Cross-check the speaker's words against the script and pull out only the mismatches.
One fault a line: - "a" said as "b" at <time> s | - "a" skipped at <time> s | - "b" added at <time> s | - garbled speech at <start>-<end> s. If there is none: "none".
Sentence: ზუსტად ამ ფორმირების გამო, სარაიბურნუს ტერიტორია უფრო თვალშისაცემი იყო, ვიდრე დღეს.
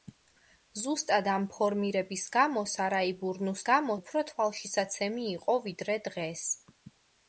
- "ტერიტორია" said as "გამო" at 3.7 s